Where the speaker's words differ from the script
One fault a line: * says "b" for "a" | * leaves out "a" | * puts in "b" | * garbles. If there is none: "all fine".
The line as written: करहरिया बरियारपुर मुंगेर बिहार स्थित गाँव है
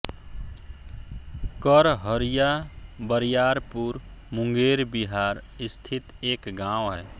* puts in "एक"